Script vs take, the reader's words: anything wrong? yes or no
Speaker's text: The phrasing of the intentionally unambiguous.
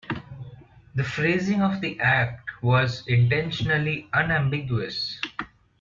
yes